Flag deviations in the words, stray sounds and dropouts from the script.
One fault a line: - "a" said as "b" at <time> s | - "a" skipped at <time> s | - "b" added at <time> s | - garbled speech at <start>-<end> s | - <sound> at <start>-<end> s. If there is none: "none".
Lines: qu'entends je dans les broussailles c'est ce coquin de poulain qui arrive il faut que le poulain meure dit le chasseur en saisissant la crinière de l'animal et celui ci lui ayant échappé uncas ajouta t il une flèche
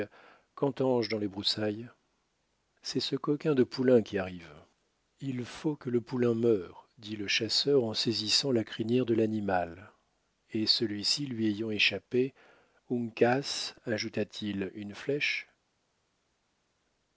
none